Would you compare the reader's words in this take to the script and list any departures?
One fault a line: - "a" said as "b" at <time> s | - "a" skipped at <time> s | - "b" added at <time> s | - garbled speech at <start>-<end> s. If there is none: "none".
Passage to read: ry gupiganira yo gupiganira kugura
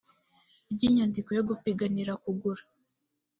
- "gupiganira" said as "inyandiko" at 0.9 s